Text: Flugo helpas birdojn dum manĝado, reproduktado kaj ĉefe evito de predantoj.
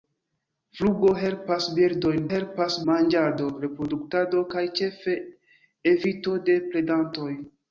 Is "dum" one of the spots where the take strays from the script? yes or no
yes